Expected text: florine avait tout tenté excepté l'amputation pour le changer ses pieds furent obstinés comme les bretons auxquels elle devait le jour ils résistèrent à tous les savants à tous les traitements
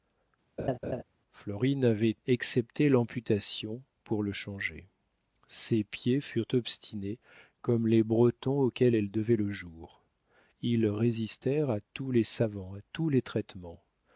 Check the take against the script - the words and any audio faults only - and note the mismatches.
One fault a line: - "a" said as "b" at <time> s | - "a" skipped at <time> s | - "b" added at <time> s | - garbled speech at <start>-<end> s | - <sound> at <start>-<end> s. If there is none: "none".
- laugh at 0.6-1.0 s
- "tout tenté" skipped at 2.2 s